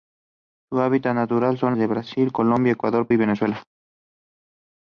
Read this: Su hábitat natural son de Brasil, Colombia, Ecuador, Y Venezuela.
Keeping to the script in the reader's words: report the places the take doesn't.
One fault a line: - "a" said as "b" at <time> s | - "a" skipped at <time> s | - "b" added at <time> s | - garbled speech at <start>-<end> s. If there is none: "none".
none